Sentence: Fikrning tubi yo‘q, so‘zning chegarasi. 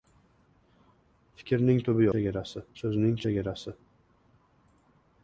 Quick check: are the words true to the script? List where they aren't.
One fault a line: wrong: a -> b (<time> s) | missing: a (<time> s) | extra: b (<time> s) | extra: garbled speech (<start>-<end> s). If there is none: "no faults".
wrong: yo‘q -> chegarasi (2.1 s)